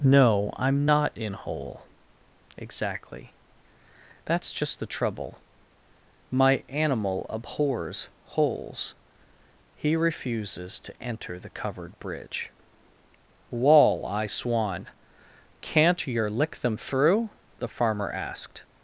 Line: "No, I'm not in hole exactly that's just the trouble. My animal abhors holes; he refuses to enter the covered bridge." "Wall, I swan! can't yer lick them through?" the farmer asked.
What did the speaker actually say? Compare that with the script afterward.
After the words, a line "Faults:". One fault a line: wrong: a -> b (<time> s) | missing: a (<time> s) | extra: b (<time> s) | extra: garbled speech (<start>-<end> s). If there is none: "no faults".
"No, I'm not in hole exactly that's just the trouble. My animal abhors holes; he refuses to enter the covered bridge." "Wall, I swan! can't yer lick them through?" the farmer asked.
Faults:
no faults